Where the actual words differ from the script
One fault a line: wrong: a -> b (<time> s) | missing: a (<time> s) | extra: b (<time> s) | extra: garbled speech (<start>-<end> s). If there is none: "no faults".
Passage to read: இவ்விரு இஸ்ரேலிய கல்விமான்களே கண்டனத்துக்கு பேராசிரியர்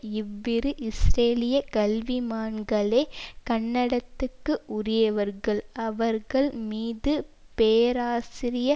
extra: உரியவர்கள் அவர்கள் மீது (4.7 s)